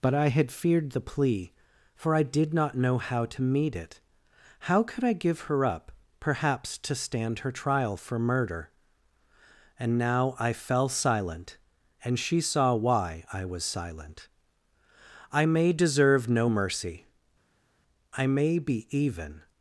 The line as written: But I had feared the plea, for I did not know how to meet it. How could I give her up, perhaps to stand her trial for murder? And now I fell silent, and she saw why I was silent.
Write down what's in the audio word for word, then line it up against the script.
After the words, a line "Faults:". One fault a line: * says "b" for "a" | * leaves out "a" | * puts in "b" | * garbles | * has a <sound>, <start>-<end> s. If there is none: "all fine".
But I had feared the plea, for I did not know how to meet it. How could I give her up, perhaps to stand her trial for murder? And now I fell silent, and she saw why I was silent. "I may deserve no mercy; I may be even
Faults:
* puts in "I may deserve no mercy I may be even"